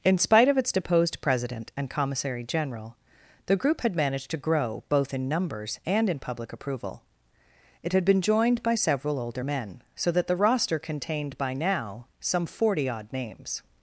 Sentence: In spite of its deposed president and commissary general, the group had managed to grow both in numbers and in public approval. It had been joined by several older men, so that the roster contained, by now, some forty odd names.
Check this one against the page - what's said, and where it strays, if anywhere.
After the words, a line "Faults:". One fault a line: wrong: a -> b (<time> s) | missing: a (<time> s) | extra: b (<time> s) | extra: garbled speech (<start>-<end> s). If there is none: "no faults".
In spite of its deposed president and commissary general, the group had managed to grow both in numbers and in public approval. It had been joined by several older men, so that the roster contained, by now, some forty odd names.
Faults:
no faults